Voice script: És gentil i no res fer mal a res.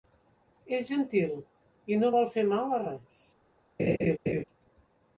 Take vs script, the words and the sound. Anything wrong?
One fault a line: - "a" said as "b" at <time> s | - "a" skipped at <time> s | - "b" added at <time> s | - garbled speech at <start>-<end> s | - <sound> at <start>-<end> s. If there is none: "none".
- "res" said as "vol" at 2.1 s
- laugh at 3.8-4.4 s